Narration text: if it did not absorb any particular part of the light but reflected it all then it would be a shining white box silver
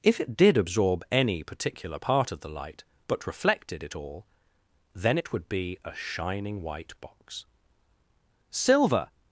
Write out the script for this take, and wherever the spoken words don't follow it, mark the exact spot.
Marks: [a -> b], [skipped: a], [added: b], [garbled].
if it did [skipped: not] absorb any particular part of the light but reflected it all then it would be a shining white box silver